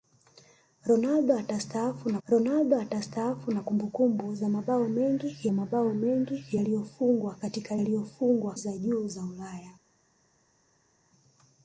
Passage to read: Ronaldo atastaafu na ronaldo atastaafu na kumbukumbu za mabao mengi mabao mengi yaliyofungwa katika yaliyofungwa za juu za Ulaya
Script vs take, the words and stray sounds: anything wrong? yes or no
no